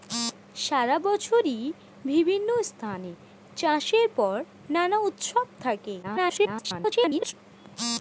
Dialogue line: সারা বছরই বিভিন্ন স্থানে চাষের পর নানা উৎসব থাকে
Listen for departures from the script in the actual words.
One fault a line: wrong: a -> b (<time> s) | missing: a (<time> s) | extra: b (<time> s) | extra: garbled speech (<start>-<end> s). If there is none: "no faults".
extra: garbled speech (6.0-7.3 s)